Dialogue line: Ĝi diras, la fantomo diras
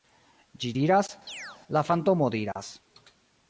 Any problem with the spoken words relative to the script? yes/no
no